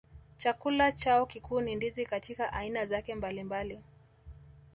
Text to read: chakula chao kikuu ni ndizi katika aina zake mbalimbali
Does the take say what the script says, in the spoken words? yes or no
yes